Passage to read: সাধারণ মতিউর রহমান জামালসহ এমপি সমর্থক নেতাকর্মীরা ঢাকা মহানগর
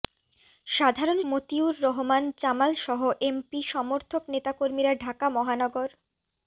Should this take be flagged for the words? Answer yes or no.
no